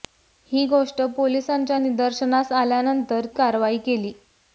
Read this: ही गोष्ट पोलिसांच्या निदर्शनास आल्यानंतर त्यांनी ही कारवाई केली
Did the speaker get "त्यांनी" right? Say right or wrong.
wrong